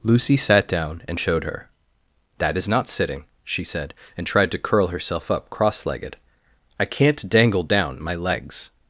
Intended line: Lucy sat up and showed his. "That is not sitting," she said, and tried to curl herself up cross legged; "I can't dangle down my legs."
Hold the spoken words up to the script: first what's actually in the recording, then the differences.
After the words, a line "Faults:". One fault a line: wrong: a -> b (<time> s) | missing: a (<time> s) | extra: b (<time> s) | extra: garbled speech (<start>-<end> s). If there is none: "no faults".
Lucy sat down and showed her. "That is not sitting," she said, and tried to curl herself up cross legged; "I can't dangle down my legs."
Faults:
wrong: up -> down (0.7 s)
wrong: his -> her (1.4 s)